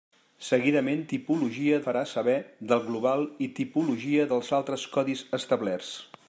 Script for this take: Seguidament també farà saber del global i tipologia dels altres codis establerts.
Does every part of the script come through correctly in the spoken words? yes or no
no